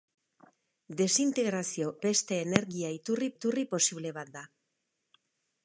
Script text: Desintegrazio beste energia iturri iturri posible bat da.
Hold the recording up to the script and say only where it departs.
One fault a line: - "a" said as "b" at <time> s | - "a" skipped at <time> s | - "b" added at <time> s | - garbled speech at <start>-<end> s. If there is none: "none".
none